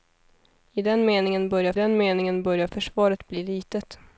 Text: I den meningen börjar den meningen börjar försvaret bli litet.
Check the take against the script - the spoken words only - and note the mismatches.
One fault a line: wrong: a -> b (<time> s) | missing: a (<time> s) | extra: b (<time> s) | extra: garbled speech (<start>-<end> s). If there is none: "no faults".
no faults